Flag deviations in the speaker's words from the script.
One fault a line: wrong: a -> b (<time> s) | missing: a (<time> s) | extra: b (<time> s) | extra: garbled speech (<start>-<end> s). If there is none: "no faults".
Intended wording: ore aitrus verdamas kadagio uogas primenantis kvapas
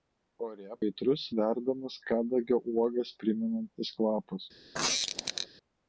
no faults